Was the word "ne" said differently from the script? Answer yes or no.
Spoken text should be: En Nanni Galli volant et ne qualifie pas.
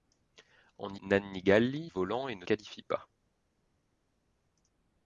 no